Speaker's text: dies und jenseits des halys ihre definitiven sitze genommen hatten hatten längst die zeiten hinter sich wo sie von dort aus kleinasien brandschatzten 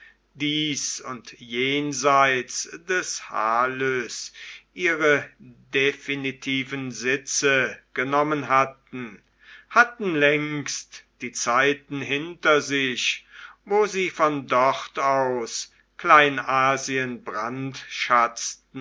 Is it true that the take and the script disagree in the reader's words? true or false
false